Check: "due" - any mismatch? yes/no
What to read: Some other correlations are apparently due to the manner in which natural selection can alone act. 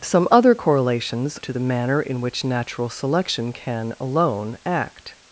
yes